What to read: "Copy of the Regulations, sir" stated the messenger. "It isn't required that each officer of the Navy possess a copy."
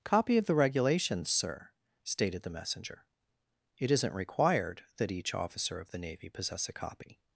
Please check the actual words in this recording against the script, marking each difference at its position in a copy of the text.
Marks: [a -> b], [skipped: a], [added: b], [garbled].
"Copy of the Regulations, sir" stated the messenger. "It isn't required that each officer of the Navy possess a copy."